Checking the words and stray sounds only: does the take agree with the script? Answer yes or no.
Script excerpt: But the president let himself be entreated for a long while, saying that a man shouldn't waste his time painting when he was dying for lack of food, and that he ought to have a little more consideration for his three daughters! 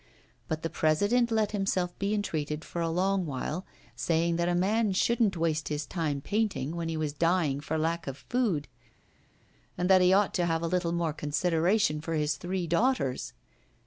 yes